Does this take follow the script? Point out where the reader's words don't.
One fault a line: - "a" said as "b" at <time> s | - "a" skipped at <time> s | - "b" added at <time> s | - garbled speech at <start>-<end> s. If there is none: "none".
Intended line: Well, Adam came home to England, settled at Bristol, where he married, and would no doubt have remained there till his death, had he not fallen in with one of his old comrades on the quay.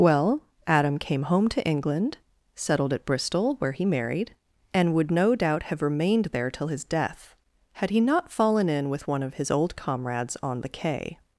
none